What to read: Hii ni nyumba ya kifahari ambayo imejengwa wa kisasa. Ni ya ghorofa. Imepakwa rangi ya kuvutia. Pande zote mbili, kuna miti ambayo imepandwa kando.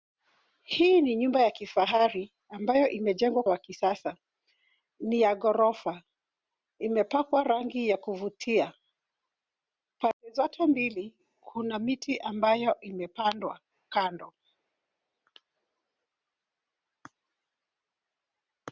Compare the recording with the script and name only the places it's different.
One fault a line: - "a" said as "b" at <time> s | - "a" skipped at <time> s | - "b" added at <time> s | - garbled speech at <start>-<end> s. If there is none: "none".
none